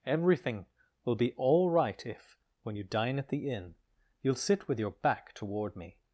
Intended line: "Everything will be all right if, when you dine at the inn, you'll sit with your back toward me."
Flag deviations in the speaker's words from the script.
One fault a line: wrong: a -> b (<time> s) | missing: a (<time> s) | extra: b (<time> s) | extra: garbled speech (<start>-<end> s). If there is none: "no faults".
no faults